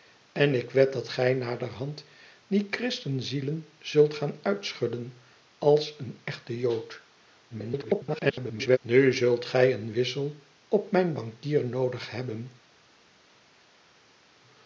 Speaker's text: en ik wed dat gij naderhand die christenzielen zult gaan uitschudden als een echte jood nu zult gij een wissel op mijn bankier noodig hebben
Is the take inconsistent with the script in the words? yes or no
yes